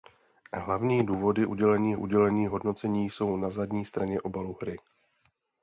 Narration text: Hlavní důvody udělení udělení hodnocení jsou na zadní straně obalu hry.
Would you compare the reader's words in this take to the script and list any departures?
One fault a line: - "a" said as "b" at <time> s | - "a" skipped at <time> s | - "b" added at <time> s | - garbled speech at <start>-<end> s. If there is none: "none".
none